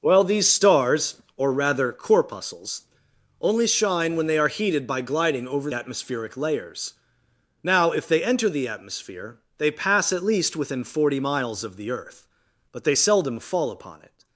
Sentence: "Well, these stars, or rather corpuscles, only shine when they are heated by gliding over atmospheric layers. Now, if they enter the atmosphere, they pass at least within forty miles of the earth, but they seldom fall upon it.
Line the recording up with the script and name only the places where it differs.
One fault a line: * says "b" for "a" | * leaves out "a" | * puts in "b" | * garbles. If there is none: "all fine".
all fine